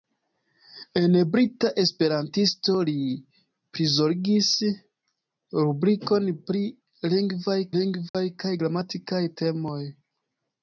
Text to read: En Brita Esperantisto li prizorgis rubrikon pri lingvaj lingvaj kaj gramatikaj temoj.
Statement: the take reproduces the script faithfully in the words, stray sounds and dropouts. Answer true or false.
false